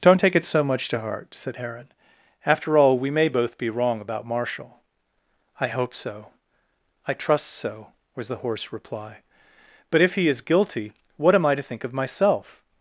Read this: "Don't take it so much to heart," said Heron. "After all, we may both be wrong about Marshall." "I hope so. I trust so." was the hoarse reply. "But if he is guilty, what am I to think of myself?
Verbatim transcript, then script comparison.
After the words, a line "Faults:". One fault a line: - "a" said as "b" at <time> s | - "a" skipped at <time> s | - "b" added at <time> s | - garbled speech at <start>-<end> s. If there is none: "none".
"Don't take it so much to heart," said Heron. "After all, we may both be wrong about Marshall." "I hope so. I trust so." was the hoarse reply. "But if he is guilty, what am I to think of myself?
Faults:
none